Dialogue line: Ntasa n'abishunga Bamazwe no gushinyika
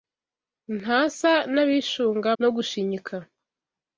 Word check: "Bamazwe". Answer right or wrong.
wrong